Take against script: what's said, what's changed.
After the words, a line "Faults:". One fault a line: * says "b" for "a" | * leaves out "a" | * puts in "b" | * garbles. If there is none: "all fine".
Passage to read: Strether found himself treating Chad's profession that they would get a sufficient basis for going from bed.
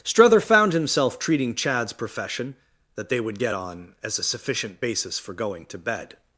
Strether found himself treating Chad's profession that they would get on as a sufficient basis for going to bed.
Faults:
* puts in "on as"
* says "to" for "from"